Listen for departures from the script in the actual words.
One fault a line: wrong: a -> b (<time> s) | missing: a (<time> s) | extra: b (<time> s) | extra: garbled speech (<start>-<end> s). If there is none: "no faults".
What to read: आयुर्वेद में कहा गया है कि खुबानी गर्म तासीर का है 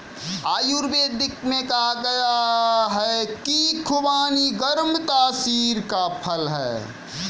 extra: फल (6.2 s)